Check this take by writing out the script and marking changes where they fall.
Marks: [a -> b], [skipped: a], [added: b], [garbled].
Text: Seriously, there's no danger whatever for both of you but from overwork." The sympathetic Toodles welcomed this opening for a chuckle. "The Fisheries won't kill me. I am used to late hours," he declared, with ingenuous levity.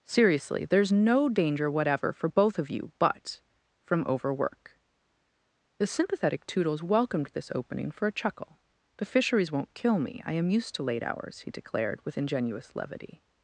Seriously, there's no danger whatever for both of you but from overwork." The sympathetic Toodles welcomed this opening for a chuckle. "The Fisheries won't kill me. I am used to late hours," he declared, with ingenuous levity.